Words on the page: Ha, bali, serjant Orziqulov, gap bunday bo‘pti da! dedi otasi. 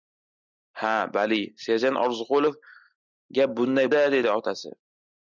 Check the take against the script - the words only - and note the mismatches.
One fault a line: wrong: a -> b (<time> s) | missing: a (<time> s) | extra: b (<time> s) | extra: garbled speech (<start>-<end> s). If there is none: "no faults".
missing: bo‘pti (3.9 s)